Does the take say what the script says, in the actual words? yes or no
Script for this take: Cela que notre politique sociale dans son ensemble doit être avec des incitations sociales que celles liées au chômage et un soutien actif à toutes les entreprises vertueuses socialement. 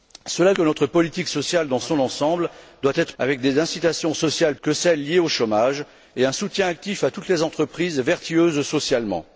yes